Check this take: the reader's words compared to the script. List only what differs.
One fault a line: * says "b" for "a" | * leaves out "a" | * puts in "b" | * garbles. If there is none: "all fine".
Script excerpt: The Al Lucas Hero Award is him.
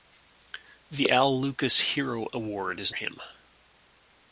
all fine